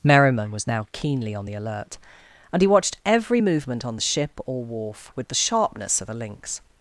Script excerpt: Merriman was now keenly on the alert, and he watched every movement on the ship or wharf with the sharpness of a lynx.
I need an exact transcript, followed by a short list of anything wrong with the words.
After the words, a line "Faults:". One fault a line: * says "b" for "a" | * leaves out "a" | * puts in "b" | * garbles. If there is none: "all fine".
Merriman was now keenly on the alert, and he watched every movement on the ship or wharf with the sharpness of a lynx.
Faults:
all fine